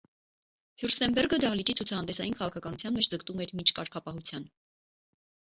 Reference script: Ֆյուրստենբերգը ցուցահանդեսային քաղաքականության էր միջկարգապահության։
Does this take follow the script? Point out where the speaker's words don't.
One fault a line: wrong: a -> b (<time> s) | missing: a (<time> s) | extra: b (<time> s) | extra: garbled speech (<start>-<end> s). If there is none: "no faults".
extra: դահլիճի (1.4 s)
extra: մեջ ձգտում (2.9 s)